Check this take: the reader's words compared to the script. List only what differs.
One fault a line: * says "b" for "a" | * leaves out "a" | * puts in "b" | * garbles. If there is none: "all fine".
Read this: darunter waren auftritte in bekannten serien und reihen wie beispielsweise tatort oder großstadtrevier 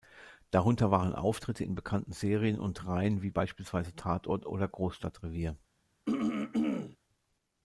all fine